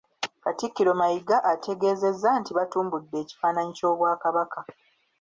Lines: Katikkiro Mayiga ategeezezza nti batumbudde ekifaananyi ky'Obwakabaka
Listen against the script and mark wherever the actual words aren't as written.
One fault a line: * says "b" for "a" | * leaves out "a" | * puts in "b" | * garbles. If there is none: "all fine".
all fine